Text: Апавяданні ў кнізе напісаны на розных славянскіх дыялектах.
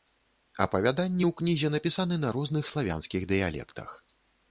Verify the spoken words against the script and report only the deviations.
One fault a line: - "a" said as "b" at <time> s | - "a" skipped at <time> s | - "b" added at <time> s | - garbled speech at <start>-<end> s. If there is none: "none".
none